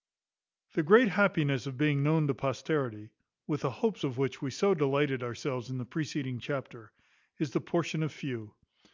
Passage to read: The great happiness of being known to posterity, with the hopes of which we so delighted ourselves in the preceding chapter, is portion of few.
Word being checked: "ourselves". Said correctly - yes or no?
yes